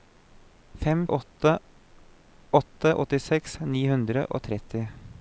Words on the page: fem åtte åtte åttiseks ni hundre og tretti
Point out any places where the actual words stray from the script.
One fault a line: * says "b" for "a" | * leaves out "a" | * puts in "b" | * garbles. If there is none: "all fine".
all fine